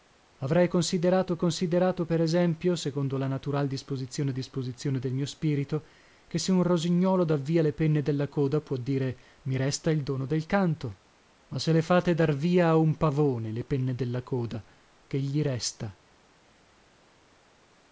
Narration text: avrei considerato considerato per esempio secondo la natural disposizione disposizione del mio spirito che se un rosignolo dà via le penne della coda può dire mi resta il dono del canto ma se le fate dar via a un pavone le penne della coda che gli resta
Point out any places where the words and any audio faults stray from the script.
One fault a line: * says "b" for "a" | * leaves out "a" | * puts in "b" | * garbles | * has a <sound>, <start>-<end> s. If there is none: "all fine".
all fine